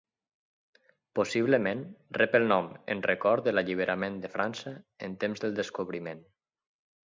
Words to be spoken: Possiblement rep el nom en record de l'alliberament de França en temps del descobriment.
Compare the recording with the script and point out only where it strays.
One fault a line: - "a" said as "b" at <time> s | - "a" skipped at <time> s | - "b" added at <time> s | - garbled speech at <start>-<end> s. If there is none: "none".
none